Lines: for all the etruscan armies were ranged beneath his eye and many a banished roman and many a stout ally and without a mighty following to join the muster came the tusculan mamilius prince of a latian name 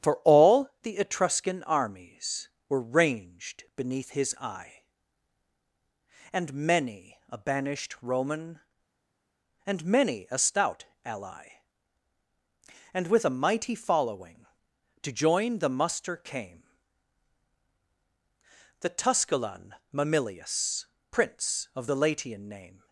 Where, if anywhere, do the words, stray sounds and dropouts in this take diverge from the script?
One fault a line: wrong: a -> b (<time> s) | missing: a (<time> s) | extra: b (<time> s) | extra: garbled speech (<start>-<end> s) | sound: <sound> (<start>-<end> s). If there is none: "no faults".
wrong: without -> with (13.1 s)
wrong: a -> the (21.9 s)